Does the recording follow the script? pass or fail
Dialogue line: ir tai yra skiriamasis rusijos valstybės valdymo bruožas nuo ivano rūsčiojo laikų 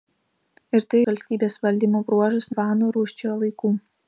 fail